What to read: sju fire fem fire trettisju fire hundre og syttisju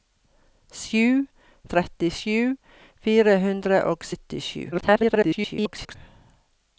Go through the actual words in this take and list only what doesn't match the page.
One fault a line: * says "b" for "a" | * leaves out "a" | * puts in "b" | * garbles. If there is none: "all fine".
* leaves out "fire fem fire"
* garbles